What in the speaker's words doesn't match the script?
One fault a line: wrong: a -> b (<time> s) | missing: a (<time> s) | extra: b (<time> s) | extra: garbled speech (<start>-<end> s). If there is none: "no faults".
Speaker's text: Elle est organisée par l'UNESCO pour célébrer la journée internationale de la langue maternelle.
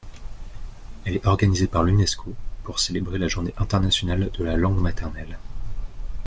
no faults